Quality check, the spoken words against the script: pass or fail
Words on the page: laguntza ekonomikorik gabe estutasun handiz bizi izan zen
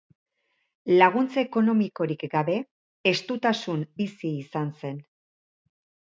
fail